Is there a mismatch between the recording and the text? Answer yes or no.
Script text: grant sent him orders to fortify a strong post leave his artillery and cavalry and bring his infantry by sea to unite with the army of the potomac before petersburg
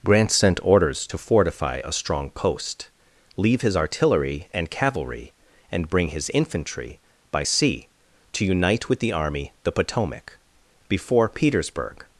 yes